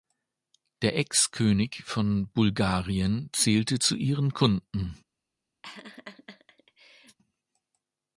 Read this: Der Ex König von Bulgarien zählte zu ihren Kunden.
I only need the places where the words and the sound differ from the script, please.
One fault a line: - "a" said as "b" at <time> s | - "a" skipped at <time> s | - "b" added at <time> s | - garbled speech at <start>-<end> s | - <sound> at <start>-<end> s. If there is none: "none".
- laugh at 5.6-7.2 s